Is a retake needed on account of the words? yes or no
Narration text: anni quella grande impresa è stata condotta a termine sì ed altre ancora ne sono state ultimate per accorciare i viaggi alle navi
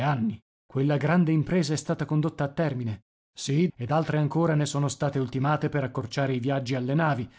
no